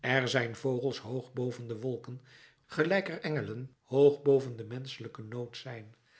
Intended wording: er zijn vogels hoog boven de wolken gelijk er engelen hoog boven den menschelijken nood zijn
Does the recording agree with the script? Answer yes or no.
yes